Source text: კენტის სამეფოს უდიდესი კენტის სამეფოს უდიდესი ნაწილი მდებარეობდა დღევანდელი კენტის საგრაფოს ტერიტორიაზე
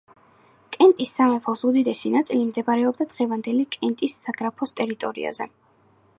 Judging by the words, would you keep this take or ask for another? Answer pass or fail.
fail